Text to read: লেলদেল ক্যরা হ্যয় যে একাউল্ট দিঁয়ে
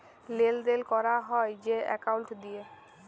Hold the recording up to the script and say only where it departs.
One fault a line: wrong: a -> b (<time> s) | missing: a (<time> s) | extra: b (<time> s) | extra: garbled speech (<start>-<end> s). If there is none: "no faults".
no faults